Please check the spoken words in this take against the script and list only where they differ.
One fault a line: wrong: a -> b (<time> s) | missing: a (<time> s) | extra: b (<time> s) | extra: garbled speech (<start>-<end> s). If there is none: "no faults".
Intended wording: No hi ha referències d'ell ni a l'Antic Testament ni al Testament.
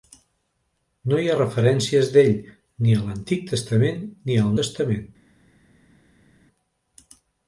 no faults